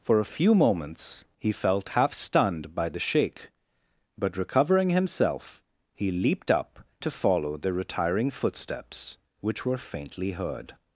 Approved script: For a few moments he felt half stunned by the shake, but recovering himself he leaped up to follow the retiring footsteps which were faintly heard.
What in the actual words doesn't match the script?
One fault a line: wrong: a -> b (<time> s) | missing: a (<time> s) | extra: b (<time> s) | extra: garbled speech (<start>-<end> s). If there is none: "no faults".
no faults